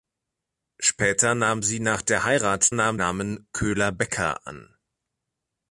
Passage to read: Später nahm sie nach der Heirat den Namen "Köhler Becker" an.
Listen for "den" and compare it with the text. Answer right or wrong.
wrong